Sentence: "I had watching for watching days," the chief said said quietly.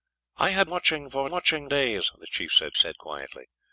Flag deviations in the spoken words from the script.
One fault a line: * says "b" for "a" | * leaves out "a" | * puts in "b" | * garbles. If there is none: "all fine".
all fine